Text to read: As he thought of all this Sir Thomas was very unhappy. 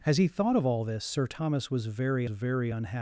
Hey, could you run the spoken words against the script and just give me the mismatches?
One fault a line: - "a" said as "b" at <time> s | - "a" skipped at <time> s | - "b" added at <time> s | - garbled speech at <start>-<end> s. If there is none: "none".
- "very" added at 2.3 s